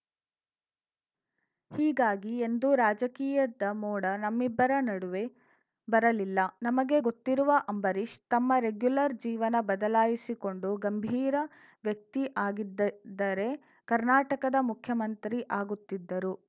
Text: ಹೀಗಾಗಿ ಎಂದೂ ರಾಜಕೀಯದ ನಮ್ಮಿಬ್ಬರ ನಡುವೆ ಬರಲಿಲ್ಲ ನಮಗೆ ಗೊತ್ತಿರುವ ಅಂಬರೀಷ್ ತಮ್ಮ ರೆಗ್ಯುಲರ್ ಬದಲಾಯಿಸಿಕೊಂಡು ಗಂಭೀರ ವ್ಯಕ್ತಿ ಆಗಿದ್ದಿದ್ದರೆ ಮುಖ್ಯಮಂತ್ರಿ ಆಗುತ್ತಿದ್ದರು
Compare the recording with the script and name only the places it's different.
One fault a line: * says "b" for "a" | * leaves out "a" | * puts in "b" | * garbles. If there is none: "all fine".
* puts in "ಮೋಡ"
* puts in "ಜೀವನ"
* puts in "ಕರ್ನಾಟಕದ"